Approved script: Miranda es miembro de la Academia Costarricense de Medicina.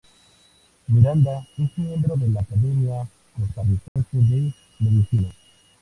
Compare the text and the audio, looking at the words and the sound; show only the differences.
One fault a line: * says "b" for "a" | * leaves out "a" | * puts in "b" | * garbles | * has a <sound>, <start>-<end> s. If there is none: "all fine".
* has a dropout, 3.9-4.0 s